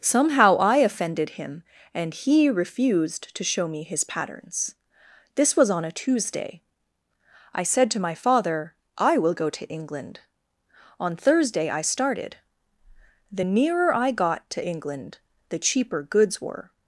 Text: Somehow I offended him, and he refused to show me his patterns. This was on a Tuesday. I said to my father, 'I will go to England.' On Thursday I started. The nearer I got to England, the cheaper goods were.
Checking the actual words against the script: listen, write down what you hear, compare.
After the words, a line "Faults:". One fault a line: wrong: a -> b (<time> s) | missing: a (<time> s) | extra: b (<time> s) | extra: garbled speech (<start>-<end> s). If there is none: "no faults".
Somehow I offended him, and he refused to show me his patterns. This was on a Tuesday. I said to my father, 'I will go to England.' On Thursday I started. The nearer I got to England, the cheaper goods were.
Faults:
no faults